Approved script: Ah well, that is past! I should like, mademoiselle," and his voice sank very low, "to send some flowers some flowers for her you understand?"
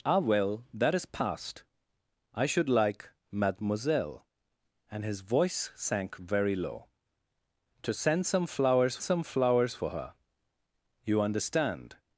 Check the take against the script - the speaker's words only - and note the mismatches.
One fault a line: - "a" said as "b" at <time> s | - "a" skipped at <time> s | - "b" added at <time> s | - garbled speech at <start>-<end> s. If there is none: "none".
none